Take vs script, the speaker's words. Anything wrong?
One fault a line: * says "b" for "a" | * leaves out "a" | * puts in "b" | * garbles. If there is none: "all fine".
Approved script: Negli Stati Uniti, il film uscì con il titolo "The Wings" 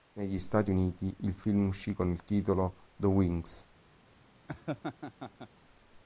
all fine